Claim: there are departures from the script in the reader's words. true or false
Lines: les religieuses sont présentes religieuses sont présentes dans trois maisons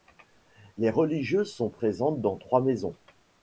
true